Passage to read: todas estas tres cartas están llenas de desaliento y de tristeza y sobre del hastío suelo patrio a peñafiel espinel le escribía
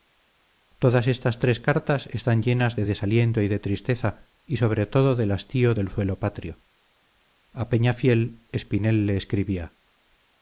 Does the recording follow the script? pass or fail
fail